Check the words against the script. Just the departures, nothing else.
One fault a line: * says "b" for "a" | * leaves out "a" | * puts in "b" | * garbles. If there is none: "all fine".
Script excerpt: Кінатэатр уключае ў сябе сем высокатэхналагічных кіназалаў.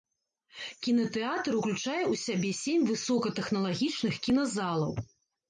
all fine